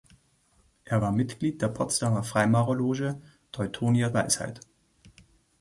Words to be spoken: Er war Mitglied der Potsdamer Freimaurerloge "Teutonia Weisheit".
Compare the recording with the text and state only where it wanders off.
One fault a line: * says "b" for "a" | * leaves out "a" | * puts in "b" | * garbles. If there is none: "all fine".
all fine